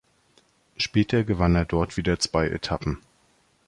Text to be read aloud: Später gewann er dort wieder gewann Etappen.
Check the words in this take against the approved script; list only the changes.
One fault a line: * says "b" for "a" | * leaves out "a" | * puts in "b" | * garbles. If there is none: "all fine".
* says "zwei" for "gewann"